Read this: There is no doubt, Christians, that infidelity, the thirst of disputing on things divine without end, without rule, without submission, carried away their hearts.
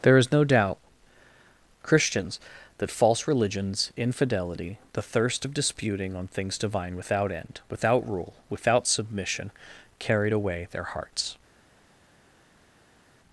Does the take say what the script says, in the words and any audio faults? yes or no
no